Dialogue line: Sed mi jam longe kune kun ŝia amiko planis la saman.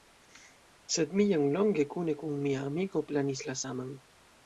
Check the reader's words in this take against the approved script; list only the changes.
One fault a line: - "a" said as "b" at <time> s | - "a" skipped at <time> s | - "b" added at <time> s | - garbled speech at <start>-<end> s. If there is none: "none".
- "ŝia" said as "mia" at 2.5 s